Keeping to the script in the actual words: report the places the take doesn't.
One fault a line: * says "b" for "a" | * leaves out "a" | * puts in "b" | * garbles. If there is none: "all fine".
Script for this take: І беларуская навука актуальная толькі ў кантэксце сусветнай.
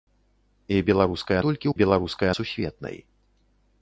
* leaves out "навука актуальная"
* says "беларуская" for "кантэксце"